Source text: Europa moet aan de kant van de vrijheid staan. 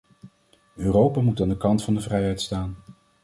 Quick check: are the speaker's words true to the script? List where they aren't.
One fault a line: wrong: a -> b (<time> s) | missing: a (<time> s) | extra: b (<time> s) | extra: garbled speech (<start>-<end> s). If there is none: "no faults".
no faults